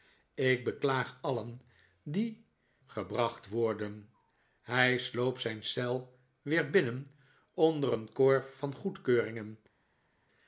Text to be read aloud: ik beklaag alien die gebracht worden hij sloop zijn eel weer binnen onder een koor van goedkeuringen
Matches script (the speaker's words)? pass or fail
pass